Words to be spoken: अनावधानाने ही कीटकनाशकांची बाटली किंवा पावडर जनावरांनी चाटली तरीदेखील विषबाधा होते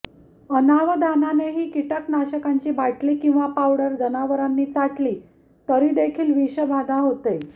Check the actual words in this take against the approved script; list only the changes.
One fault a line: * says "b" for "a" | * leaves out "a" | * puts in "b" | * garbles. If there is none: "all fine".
all fine